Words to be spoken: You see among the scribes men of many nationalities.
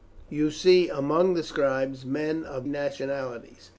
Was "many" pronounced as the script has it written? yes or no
no